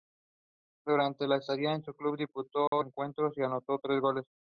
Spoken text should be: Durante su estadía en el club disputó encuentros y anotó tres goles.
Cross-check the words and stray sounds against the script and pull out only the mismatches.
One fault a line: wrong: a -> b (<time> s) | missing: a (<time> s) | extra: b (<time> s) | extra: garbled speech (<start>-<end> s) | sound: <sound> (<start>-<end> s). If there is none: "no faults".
sound: dropout (2.7-2.7 s)